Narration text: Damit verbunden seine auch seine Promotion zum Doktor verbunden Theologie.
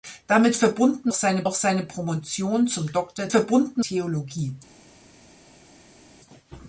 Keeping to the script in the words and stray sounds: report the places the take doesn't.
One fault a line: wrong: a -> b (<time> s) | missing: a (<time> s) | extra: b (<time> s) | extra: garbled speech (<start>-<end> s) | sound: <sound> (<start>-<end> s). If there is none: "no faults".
no faults